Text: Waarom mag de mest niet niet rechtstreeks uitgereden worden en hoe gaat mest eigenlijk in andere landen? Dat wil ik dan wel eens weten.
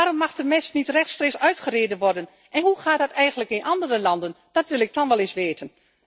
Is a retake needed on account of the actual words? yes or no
yes